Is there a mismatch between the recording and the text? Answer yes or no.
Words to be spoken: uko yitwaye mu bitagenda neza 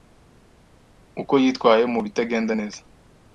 no